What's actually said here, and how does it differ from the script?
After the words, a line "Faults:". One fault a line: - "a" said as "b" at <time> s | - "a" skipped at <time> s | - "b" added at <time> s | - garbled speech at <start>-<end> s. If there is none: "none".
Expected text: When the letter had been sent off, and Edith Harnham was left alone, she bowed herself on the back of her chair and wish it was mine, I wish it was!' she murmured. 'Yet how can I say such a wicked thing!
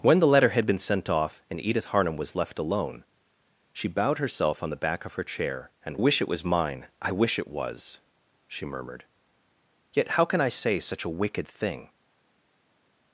When the letter had been sent off, and Edith Harnham was left alone, she bowed herself on the back of her chair and wish it was mine, I wish it was!' she murmured. 'Yet how can I say such a wicked thing!
Faults:
none